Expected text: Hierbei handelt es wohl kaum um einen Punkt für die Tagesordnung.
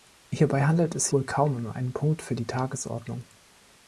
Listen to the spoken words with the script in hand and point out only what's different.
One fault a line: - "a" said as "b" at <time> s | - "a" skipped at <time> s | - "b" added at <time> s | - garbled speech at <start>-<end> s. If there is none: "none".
none